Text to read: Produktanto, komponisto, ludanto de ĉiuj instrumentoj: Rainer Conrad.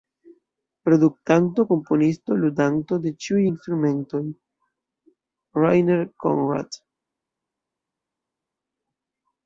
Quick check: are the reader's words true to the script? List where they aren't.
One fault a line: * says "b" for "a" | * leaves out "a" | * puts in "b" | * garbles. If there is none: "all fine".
all fine